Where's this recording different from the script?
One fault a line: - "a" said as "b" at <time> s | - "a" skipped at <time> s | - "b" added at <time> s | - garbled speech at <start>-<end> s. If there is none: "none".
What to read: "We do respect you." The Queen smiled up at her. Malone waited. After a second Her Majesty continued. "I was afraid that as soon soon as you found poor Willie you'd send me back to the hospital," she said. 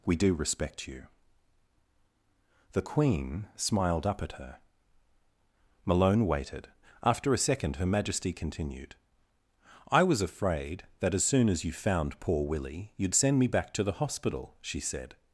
- "soon" skipped at 11.5 s